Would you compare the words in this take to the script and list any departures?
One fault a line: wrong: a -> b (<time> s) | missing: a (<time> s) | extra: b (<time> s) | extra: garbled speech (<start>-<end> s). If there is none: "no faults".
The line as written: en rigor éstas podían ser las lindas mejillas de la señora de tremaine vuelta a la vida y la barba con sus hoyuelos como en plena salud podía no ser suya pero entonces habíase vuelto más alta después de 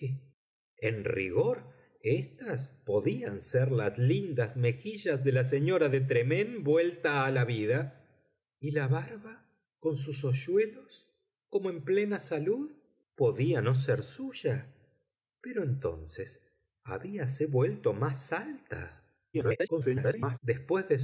extra: garbled speech (19.3-20.4 s)